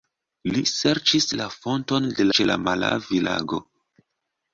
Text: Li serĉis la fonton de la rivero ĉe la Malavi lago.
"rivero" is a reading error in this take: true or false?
true